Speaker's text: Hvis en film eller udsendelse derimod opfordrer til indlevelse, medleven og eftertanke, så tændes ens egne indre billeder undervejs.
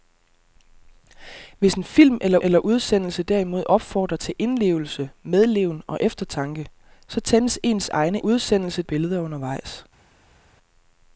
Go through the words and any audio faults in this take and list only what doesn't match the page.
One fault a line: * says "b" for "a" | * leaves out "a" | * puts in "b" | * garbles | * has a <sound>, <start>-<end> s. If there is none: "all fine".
* puts in "eller"
* says "udsendelse" for "indre"